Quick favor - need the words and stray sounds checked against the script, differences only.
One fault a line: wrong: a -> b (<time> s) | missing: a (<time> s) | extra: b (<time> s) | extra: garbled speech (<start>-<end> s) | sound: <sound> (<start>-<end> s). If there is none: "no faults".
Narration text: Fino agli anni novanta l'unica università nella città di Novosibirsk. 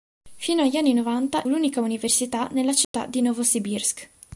sound: dropout (2.8-2.9 s)